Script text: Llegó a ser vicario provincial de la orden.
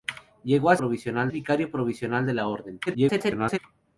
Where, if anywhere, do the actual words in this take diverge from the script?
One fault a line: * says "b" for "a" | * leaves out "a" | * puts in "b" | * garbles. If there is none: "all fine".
* says "provincial" for "ser"
* garbles